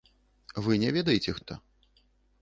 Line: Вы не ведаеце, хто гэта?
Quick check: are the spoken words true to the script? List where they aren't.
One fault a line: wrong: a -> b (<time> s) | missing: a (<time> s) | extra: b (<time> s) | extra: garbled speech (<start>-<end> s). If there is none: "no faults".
missing: хто (1.4 s)